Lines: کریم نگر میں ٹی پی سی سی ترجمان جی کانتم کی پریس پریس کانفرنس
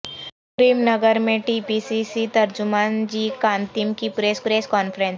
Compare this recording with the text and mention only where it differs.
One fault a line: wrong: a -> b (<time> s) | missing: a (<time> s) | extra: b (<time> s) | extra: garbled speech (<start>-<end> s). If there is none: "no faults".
no faults